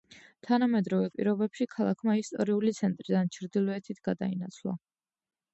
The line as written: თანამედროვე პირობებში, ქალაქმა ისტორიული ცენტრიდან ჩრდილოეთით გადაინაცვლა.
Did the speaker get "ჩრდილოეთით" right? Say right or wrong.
right